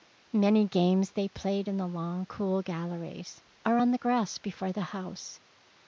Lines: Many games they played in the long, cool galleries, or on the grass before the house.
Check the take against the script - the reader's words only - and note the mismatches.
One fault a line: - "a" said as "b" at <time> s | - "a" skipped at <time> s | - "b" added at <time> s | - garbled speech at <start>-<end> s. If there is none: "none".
none